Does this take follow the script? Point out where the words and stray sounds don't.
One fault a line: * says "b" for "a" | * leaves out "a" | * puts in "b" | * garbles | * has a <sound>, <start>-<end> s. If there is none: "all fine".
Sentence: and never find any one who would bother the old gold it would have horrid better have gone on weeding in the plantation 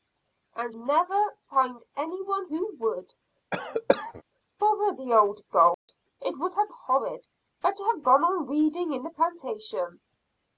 * has a cough, 3.5-4.2 s
* has a dropout, 5.7-5.9 s